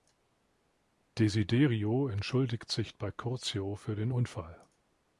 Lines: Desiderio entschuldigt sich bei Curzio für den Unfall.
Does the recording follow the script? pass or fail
pass